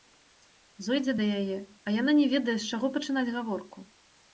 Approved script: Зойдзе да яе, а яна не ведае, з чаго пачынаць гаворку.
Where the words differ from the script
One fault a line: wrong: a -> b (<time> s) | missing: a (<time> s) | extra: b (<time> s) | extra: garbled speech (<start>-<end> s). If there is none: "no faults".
no faults